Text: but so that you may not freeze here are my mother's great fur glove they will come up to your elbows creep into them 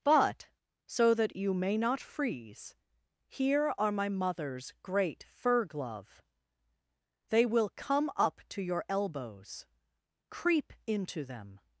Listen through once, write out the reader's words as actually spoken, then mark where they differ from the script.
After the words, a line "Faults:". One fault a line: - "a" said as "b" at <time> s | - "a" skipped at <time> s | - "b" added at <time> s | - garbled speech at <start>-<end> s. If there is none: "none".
but so that you may not freeze here are my mother's great fur glove they will come up to your elbows creep into them
Faults:
none